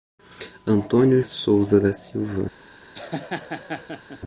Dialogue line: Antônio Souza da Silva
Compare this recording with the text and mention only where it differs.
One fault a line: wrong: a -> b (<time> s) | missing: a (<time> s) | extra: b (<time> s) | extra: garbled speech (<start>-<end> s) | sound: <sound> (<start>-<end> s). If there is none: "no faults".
sound: laugh (2.9-4.2 s)